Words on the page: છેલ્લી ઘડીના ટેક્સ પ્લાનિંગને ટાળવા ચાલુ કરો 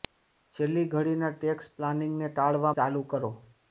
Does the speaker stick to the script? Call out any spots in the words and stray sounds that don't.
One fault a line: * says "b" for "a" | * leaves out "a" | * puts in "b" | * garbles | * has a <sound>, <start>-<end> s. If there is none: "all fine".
all fine